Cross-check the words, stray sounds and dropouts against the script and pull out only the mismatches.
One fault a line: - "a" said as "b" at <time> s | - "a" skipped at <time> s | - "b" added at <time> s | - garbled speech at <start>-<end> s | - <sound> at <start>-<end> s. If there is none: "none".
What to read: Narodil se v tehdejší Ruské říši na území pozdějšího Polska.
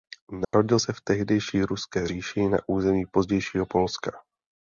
- dropout at 0.4-0.5 s